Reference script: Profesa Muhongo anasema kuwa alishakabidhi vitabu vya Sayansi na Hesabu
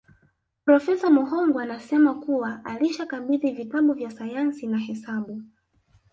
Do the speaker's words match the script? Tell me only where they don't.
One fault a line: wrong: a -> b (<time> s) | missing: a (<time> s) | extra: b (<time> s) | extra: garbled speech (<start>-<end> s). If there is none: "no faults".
no faults